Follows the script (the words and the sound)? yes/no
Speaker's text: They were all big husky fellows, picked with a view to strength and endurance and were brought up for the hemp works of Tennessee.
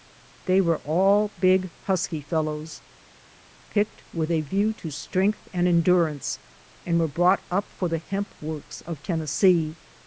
yes